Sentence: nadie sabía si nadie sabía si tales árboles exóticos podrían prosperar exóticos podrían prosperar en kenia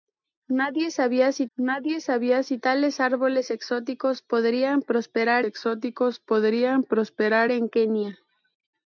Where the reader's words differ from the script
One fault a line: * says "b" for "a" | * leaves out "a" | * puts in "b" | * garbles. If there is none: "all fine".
all fine